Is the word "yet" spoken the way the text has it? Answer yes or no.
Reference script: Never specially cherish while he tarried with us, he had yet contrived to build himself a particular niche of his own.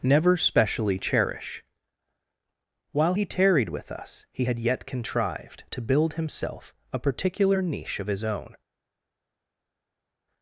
yes